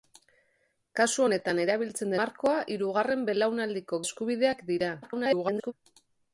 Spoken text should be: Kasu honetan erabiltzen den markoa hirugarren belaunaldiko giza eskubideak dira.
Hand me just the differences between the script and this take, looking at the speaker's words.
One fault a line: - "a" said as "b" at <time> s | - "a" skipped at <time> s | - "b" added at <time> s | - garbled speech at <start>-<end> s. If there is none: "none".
- "den" skipped at 2.2 s
- "giza" skipped at 4.0 s
- garbled speech at 5.0-5.7 s